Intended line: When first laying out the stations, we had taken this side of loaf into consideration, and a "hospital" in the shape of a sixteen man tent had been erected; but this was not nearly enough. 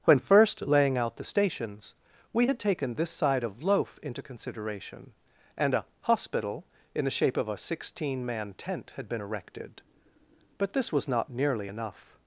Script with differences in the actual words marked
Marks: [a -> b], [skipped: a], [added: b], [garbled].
When first laying out the stations, we had taken this side of loaf into consideration, and a "hospital" in the shape of a sixteen man tent had been erected; but this was not nearly enough.